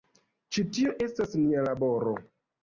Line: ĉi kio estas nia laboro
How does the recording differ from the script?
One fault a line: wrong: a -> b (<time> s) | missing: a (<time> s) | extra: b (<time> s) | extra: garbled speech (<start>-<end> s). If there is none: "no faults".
wrong: kio -> tio (0.8 s)